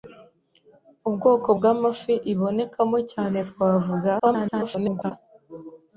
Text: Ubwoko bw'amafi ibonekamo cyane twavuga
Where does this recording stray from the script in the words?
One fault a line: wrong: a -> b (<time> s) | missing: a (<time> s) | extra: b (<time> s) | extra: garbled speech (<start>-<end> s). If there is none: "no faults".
extra: garbled speech (4.2-5.1 s)